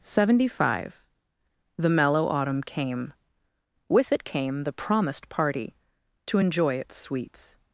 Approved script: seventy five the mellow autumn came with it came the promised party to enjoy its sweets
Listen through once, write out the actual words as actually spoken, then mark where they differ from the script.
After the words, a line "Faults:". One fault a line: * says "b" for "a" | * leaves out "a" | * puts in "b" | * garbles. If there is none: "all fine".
seventy five the mellow autumn came with it came the promised party to enjoy its sweets
Faults:
all fine